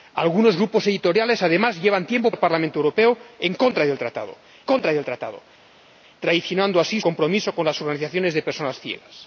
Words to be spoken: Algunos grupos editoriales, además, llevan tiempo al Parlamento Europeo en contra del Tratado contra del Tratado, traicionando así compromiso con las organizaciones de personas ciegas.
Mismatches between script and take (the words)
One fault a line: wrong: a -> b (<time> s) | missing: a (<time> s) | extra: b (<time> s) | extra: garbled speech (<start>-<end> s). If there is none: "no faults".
no faults